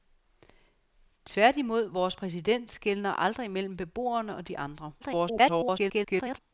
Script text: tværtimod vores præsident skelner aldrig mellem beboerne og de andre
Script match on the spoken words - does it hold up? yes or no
no